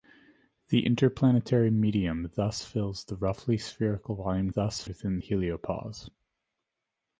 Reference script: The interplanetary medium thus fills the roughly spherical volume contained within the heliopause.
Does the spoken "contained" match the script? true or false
false